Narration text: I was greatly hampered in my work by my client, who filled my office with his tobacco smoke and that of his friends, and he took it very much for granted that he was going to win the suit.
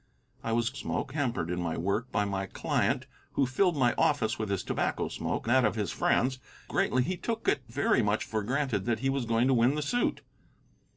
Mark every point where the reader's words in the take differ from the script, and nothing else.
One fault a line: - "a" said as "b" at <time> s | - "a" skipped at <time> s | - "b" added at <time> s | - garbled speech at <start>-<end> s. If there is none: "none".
- "greatly" said as "smoke" at 0.7 s
- "and" skipped at 5.5 s
- "and" said as "greatly" at 6.6 s